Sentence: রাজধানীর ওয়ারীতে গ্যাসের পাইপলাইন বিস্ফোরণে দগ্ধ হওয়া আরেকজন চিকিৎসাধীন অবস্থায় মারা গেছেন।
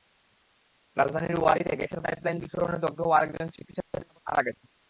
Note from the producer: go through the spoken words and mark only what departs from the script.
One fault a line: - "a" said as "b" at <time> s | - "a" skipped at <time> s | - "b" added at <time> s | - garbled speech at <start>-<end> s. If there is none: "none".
none